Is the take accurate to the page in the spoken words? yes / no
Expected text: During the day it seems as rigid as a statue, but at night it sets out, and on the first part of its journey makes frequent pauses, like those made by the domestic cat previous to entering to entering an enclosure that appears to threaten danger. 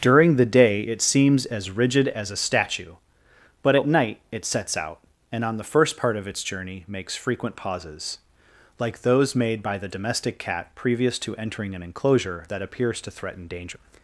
no